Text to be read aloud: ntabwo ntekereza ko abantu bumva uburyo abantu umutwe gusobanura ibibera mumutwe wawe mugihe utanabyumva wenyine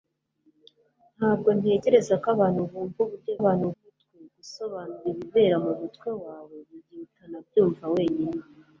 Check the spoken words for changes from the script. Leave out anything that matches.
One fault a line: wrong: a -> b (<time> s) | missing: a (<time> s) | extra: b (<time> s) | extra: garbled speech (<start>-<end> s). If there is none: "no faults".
no faults